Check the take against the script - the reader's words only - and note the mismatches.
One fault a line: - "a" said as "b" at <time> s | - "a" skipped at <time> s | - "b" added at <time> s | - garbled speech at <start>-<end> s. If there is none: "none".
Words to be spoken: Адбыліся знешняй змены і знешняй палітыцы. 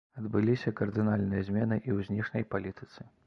- "знешняй" said as "кардынальныя" at 0.8 s
- "ў" added at 2.0 s